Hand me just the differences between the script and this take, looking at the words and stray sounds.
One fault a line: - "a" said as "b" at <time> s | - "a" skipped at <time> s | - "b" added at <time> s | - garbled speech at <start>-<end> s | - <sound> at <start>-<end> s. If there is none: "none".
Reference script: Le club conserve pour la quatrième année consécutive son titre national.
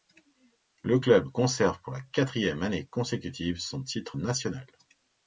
none